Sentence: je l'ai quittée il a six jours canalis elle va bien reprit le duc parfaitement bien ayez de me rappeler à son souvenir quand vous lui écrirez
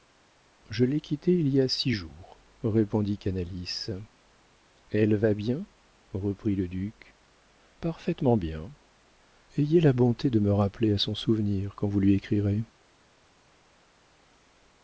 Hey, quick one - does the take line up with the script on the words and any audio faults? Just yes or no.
no